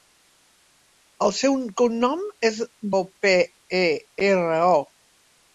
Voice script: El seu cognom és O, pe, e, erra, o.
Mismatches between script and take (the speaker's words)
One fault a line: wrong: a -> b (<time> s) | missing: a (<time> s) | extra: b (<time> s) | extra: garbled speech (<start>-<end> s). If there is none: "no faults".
no faults